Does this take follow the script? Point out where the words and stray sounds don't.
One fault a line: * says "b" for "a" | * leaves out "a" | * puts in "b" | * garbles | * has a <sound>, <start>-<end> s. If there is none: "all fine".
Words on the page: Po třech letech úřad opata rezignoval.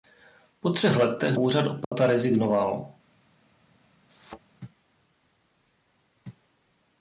* has a dropout, 1.8-1.9 s
* has a thud, 4.1-4.4 s